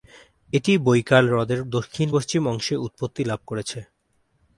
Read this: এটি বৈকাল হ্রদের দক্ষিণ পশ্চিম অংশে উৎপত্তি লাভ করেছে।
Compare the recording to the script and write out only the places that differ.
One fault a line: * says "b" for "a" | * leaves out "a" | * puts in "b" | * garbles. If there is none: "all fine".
all fine